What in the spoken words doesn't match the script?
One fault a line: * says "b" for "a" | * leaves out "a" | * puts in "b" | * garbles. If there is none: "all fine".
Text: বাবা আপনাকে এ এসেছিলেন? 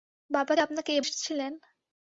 all fine